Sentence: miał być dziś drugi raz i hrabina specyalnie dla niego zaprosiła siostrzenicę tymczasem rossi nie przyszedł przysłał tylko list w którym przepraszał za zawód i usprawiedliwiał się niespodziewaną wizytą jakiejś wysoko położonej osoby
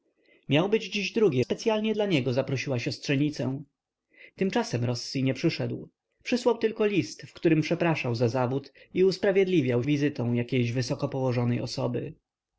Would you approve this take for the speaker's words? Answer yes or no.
no